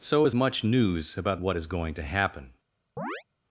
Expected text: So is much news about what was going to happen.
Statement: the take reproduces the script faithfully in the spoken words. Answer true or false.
false